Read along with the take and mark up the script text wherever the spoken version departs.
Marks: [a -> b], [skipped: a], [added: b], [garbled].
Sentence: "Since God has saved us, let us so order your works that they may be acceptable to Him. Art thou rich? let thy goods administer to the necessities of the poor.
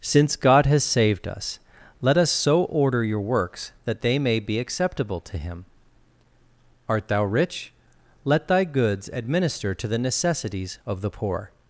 "Since God has saved us, let us so order your works that they may be acceptable to Him. Art thou rich? let thy goods administer to the necessities of the poor.